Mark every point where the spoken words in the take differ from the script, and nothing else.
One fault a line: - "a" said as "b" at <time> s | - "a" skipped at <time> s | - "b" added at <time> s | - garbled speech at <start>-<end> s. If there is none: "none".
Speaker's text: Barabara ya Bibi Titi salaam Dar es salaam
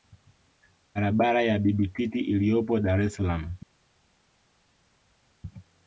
- "salaam" said as "iliyopo" at 2.2 s